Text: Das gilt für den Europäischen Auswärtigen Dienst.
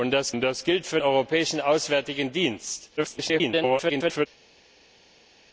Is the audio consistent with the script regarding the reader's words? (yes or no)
no